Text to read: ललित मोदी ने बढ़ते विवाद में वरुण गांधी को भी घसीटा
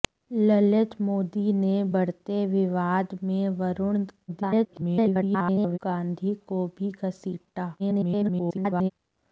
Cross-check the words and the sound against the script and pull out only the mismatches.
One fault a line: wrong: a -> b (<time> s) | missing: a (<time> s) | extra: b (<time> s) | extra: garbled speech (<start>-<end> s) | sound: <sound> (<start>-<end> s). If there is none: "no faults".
extra: garbled speech (4.3-5.8 s)
extra: garbled speech (7.8-8.9 s)